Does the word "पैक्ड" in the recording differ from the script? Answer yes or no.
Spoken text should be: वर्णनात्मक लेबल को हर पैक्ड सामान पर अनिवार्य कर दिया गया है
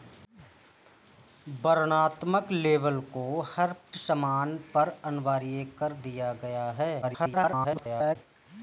yes